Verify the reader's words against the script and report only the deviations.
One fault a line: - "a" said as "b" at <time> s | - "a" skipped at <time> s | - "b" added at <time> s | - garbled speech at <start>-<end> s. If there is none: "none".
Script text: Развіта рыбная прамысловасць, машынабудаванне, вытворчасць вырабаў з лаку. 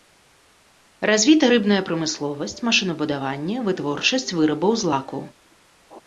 none